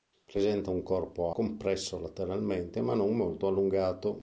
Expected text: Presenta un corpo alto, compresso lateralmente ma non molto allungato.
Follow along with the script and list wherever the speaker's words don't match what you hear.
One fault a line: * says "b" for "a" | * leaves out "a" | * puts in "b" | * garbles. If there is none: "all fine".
* leaves out "alto"